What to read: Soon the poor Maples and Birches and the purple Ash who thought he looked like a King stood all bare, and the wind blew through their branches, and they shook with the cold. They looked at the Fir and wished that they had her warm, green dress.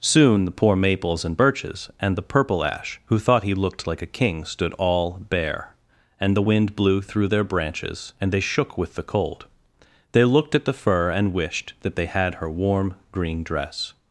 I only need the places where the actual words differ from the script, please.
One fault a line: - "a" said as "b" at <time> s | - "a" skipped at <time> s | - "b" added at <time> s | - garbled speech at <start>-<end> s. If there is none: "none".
none